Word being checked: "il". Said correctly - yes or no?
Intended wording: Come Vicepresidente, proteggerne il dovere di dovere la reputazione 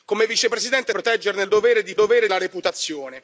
yes